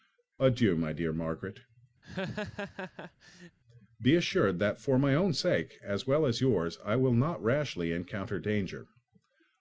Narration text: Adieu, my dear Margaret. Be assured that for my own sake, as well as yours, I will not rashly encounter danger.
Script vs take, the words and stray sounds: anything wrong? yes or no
yes